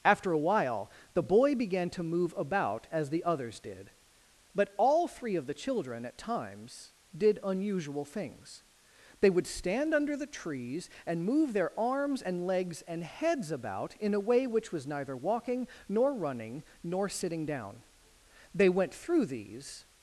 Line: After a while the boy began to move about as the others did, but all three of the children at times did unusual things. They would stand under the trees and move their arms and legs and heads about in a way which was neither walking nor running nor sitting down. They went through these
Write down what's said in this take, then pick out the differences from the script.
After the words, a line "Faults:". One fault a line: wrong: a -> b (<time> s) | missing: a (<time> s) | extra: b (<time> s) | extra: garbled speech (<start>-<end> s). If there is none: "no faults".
After a while the boy began to move about as the others did, but all three of the children at times did unusual things. They would stand under the trees and move their arms and legs and heads about in a way which was neither walking nor running nor sitting down. They went through these
Faults:
no faults